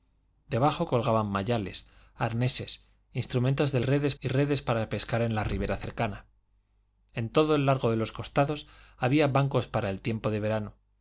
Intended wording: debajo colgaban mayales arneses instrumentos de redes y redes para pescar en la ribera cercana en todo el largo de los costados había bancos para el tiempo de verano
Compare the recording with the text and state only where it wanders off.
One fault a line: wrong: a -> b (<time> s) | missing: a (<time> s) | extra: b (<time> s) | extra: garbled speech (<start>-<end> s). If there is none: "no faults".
no faults